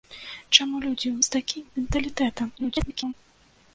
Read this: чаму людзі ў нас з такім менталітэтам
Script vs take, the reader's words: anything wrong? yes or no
yes